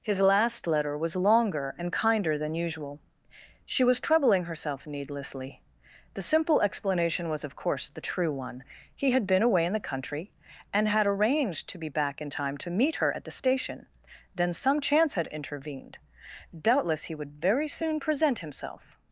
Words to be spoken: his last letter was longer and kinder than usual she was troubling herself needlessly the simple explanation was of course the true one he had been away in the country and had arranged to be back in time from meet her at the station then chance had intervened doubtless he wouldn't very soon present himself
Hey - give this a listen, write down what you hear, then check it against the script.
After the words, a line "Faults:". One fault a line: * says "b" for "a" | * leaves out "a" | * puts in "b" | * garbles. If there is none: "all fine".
his last letter was longer and kinder than usual she was troubling herself needlessly the simple explanation was of course the true one he had been away in the country and had arranged to be back in time to meet her at the station then some chance had intervened doubtless he would very soon present himself
Faults:
* says "to" for "from"
* puts in "some"
* says "would" for "wouldn't"